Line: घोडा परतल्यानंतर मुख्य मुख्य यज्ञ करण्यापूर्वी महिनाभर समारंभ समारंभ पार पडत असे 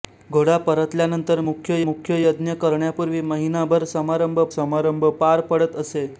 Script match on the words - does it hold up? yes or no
yes